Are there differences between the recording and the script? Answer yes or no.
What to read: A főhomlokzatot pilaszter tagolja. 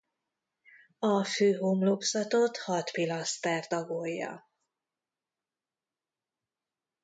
yes